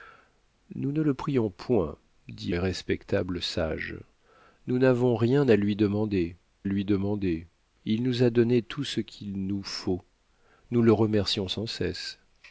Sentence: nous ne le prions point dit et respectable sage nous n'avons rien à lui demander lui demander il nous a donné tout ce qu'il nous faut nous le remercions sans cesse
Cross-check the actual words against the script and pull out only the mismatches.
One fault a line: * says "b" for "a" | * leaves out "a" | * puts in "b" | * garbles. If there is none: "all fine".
all fine